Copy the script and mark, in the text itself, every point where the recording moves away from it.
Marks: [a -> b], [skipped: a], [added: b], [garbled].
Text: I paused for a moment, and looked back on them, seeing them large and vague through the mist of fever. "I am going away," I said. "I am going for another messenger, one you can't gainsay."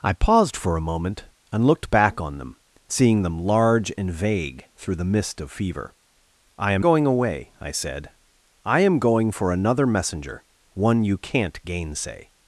I paused for a moment, and looked back on them, seeing them large and vague through the mist of fever. "I am going away," I said. "I am going for another messenger, one you can't gainsay."